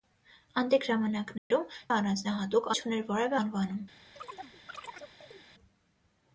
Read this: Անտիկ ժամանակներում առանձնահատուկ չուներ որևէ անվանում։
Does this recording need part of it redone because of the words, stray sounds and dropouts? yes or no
yes